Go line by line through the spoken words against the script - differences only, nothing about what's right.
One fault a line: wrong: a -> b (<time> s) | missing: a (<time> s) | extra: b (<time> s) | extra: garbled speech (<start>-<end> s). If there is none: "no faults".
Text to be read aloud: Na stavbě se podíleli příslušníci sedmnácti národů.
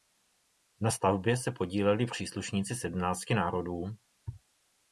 no faults